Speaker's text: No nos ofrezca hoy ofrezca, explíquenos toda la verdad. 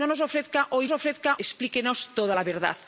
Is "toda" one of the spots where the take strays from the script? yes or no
no